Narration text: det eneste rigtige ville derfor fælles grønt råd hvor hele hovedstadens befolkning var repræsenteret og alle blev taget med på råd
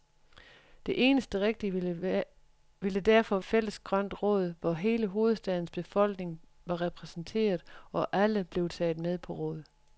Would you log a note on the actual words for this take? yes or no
no